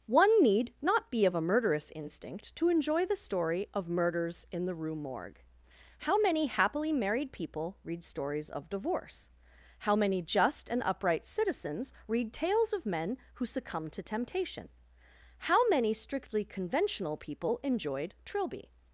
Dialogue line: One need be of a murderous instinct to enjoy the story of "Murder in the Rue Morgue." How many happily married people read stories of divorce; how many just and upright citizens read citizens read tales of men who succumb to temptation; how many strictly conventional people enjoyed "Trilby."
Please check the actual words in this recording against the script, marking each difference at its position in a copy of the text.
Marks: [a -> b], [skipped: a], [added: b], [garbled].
One need [added: not] be of a murderous instinct to enjoy the story of ["Murder -> Murders] in the Rue Morgue." How many happily married people read stories of divorce; how many just and upright citizens read [skipped: citizens read] tales of men who succumb to temptation; how many strictly conventional people enjoyed "Trilby."